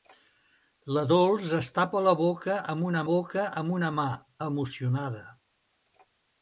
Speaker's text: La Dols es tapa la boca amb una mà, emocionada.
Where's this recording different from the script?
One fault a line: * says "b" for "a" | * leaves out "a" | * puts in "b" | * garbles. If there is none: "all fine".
* puts in "boca amb una"